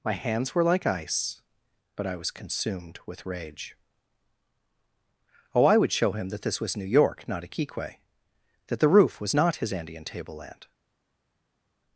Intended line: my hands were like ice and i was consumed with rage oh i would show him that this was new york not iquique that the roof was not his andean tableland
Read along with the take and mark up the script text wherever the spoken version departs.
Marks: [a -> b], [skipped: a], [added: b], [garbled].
my hands were like ice [and -> but] i was consumed with rage oh i would show him that this was new york not iquique that the roof was not his andean tableland